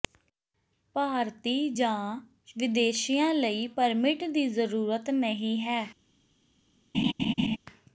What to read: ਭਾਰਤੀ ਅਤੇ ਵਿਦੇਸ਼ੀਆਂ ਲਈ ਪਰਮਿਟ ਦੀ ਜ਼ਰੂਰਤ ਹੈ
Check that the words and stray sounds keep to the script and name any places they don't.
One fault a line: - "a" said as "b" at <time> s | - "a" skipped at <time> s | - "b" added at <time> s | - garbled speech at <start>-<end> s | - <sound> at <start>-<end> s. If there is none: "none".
- "ਅਤੇ" said as "ਜਾਂ" at 1.7 s
- "ਨਹੀਂ" added at 5.1 s
- laugh at 6.9-7.6 s